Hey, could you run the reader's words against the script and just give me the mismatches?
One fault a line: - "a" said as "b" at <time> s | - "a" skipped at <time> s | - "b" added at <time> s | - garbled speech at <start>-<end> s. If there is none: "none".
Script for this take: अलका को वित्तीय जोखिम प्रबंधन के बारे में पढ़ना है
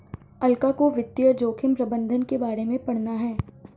none